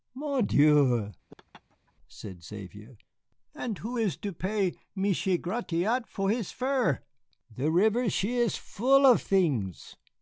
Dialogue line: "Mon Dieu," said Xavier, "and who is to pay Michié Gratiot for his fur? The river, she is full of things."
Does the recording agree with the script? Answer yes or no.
yes